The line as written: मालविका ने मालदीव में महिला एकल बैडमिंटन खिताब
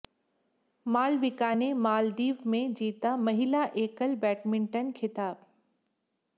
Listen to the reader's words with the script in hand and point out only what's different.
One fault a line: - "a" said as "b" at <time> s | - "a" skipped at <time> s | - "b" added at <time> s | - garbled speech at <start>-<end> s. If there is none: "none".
- "जीता" added at 2.7 s